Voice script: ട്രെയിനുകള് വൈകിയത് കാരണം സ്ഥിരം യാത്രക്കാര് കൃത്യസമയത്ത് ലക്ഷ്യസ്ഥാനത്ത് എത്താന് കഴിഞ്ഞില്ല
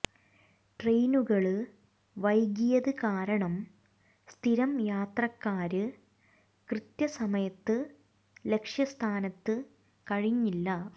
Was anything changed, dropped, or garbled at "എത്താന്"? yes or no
yes